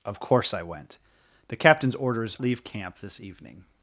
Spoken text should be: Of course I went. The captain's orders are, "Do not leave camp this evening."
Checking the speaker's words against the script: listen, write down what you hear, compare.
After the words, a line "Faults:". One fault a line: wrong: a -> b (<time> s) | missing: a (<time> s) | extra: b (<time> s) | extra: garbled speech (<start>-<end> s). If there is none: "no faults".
Of course I went. The captain's orders leave camp this evening."
Faults:
missing: are Do not (2.4 s)